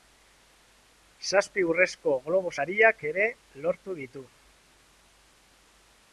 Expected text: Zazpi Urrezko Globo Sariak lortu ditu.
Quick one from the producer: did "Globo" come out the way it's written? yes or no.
yes